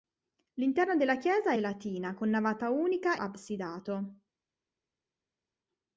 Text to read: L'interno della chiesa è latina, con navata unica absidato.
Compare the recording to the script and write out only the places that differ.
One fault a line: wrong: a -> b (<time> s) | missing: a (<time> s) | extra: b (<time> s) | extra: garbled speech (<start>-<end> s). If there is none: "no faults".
no faults